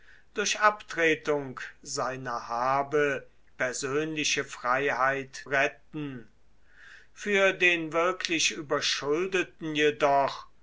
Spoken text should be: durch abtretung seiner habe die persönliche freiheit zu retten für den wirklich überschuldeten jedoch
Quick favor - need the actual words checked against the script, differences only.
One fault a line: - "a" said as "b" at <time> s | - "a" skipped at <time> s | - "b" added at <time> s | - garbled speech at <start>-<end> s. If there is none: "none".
- "die" skipped at 3.3 s
- "zu" skipped at 5.5 s